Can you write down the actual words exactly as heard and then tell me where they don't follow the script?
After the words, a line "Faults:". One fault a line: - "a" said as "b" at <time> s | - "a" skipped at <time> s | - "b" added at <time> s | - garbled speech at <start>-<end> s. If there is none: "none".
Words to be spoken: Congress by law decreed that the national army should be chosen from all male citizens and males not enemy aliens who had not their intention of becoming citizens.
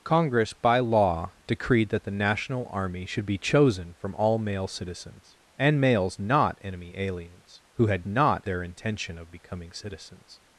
Congress by law decreed that the national army should be chosen from all male citizens and males not enemy aliens who had not their intention of becoming citizens.
Faults:
none